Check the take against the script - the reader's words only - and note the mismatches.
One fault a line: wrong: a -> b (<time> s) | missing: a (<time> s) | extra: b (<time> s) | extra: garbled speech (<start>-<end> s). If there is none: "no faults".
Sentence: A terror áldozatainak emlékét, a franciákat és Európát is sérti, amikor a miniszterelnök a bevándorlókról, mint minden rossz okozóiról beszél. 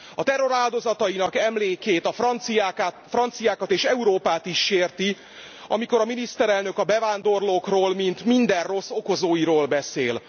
no faults